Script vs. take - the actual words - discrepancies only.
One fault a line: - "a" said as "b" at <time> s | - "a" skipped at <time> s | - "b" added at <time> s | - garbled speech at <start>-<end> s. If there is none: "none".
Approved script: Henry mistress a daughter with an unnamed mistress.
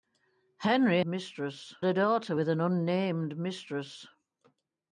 none